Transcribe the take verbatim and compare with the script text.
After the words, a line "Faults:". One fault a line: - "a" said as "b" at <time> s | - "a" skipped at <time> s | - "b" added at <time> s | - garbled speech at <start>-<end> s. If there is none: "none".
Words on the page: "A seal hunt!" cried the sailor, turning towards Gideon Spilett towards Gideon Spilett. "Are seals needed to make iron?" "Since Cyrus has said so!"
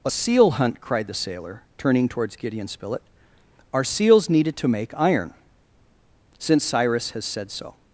"A seal hunt!" cried the sailor, turning towards Gideon Spilett. "Are seals needed to make iron?" "Since Cyrus has said so!"
Faults:
- "towards Gideon Spilett" skipped at 3.0 s